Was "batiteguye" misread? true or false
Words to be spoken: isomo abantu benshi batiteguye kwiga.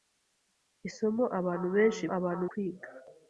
true